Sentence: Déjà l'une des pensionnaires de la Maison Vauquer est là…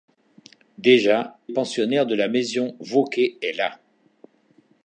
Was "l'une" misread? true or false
true